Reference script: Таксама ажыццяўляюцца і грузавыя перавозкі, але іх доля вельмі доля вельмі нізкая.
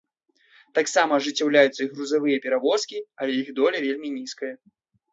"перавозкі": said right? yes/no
yes